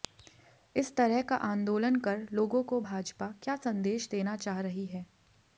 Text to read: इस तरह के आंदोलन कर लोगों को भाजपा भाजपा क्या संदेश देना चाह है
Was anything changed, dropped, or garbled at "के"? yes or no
yes